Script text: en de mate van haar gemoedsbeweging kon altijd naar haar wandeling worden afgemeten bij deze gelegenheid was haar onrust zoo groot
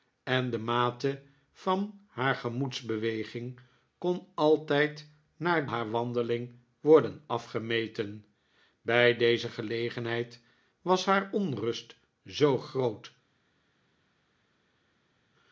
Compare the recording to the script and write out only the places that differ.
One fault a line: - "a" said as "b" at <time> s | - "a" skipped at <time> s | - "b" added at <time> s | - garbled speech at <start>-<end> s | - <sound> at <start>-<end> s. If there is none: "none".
none